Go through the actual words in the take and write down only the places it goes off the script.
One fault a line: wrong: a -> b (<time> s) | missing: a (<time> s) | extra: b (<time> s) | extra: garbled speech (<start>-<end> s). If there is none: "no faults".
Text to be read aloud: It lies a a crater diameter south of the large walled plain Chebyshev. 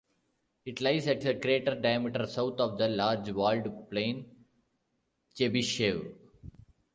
no faults